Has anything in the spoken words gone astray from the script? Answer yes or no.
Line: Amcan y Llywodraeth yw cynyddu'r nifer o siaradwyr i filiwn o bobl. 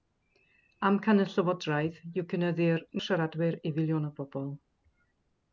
yes